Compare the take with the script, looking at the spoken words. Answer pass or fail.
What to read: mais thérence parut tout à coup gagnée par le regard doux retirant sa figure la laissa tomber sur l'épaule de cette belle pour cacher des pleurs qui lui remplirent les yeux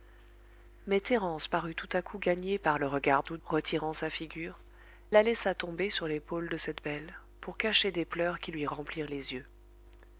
pass